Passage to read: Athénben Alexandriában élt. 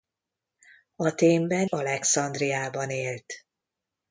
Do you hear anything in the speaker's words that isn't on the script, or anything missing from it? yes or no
no